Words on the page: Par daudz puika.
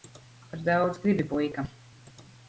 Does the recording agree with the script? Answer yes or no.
no